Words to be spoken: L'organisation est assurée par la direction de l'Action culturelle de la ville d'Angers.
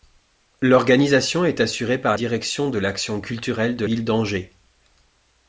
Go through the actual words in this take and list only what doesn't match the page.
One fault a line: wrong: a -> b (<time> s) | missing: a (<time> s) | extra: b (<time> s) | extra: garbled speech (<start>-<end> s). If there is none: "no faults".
missing: la (2.2 s)
missing: la (3.9 s)